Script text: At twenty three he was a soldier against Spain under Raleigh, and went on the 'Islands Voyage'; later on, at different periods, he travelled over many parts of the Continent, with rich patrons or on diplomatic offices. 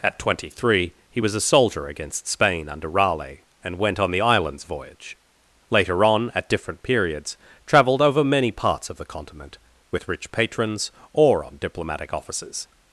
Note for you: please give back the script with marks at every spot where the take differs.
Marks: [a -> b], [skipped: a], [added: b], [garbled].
At twenty three he was a soldier against Spain under Raleigh, and went on the 'Islands Voyage'; later on, at different periods, [skipped: he] travelled over many parts of the Continent, with rich patrons or on diplomatic offices.